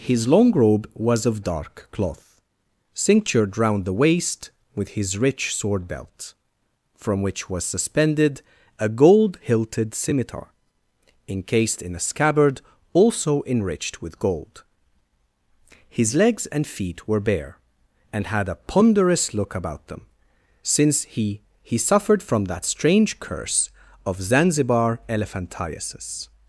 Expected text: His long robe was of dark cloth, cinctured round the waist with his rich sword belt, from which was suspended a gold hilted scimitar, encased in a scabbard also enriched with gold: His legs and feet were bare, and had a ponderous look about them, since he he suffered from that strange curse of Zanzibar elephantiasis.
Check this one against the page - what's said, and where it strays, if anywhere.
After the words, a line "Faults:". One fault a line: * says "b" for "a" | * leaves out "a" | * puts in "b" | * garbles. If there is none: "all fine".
His long robe was of dark cloth, cinctured round the waist with his rich sword belt, from which was suspended a gold hilted scimitar, encased in a scabbard also enriched with gold: His legs and feet were bare, and had a ponderous look about them, since he he suffered from that strange curse of Zanzibar elephantiasis.
Faults:
all fine